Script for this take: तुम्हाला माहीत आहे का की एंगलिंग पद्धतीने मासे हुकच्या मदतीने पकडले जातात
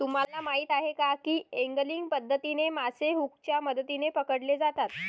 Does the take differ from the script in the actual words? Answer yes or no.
no